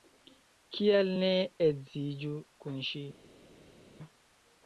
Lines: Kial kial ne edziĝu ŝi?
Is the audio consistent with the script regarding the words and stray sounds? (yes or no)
no